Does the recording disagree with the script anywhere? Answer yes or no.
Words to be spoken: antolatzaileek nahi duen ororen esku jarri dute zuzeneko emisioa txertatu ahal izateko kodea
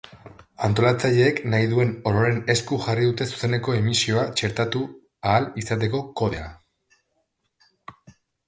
no